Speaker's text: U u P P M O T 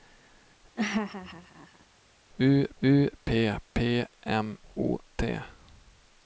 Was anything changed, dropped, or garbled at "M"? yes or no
no